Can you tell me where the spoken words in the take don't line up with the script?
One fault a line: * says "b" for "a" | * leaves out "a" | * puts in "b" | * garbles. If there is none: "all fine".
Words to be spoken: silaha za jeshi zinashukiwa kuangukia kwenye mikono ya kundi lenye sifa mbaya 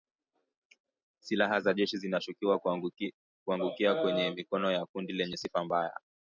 all fine